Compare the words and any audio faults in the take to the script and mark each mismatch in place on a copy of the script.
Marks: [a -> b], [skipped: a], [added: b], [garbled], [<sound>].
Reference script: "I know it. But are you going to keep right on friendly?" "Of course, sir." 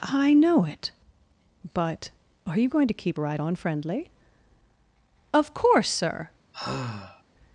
"I know it. But are you going to keep right on friendly?" "Of course, sir." [sigh]